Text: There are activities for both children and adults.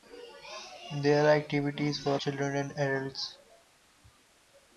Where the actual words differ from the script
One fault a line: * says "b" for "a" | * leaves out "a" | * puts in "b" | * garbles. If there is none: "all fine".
* leaves out "both"